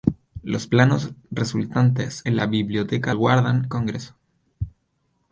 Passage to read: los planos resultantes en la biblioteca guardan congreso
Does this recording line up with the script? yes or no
yes